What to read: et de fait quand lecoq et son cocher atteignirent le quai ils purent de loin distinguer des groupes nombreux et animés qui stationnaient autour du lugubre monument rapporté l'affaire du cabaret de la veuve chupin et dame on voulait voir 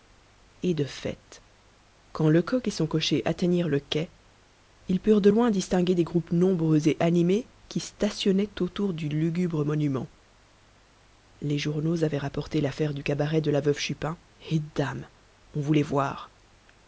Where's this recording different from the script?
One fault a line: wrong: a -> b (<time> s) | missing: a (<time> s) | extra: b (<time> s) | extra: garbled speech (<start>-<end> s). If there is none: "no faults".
extra: les journaux avaient (11.4 s)